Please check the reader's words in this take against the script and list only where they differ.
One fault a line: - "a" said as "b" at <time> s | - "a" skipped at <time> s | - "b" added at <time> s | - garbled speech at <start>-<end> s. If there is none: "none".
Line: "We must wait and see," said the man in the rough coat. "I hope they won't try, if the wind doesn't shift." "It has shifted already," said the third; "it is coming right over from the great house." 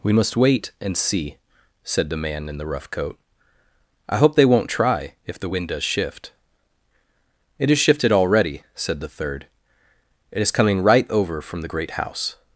- "doesn't" said as "does" at 5.7 s